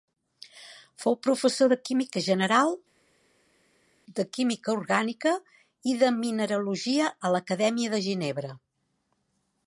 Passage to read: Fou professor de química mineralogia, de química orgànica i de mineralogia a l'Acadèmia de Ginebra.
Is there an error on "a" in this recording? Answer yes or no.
no